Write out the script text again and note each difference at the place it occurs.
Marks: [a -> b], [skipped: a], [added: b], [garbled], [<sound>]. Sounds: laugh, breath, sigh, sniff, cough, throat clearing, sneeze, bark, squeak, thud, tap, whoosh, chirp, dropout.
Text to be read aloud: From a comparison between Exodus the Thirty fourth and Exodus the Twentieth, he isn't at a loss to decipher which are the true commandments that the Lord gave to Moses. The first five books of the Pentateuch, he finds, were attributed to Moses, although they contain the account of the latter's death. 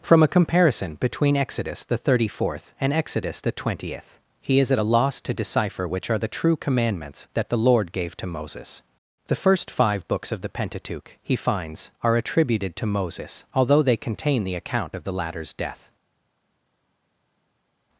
From a comparison between Exodus the Thirty fourth and Exodus the Twentieth, he [isn't -> is] at a loss to decipher which are the true commandments that the Lord gave to Moses. The first five books of the Pentateuch, he finds, [were -> are] attributed to Moses, although they contain the account of the latter's death.